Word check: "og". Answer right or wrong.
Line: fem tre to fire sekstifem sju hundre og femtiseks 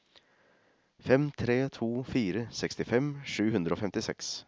right